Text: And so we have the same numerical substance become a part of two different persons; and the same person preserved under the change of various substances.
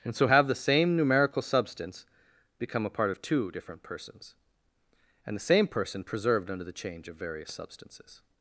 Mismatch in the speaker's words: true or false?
true